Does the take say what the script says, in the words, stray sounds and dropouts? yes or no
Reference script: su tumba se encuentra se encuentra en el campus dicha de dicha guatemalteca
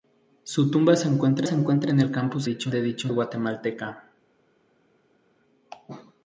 yes